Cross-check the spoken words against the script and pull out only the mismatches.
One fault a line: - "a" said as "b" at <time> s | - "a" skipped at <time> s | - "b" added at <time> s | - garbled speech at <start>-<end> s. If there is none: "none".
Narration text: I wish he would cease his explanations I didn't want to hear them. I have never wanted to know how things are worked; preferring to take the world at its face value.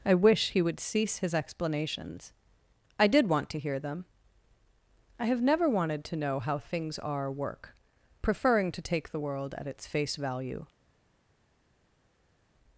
- "didn't" said as "did" at 3.1 s
- "worked" said as "work" at 7.3 s